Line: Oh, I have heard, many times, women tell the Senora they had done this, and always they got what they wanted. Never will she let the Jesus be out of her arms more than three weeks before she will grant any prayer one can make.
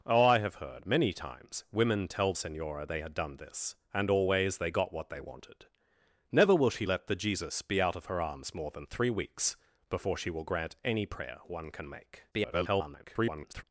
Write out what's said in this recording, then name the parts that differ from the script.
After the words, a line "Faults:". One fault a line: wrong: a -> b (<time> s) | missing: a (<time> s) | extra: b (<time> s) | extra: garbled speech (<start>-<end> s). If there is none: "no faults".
Oh, I have heard, many times, women tell Senora they had done this, and always they got what they wanted. Never will she let the Jesus be out of her arms more than three weeks before she will grant any prayer one can make. [garbled]
Faults:
missing: the (2.3 s)
extra: garbled speech (12.3-13.6 s)